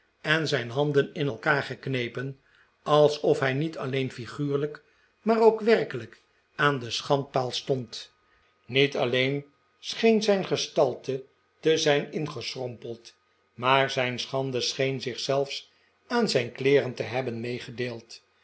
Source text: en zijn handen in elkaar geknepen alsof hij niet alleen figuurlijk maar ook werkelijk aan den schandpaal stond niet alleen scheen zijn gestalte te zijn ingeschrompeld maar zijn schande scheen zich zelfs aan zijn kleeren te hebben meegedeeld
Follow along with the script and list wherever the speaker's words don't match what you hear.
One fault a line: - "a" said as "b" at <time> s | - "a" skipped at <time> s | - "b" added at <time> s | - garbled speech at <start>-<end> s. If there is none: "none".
none